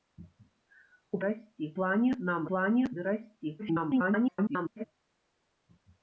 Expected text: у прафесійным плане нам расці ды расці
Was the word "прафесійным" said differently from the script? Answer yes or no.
yes